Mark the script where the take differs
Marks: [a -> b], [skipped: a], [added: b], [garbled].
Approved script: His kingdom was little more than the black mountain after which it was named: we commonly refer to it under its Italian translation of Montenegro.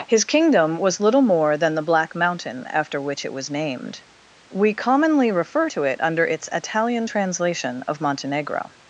His kingdom was little more than the black mountain after which it was named: we commonly refer to it under its Italian translation of Montenegro.